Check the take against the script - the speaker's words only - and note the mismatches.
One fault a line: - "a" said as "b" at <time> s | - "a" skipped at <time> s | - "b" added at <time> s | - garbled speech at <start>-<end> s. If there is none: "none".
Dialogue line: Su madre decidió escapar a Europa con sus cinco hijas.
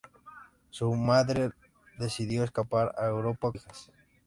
- "con sus cinco" skipped at 3.5 s